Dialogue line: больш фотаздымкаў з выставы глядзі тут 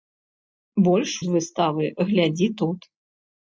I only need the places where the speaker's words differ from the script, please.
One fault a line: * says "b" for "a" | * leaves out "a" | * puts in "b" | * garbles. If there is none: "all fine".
* leaves out "фотаздымкаў"